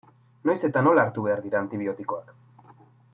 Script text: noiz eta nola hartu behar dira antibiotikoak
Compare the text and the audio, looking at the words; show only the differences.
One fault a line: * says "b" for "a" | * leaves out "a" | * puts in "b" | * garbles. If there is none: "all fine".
all fine